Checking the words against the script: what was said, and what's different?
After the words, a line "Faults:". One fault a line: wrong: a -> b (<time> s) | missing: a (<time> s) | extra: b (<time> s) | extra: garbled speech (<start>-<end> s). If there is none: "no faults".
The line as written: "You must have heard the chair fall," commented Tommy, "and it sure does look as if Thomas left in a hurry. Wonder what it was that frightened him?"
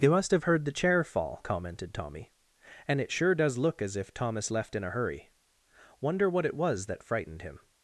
"You must have heard the chair fall," commented Tommy, "and it sure does look as if Thomas left in a hurry. Wonder what it was that frightened him?"
Faults:
no faults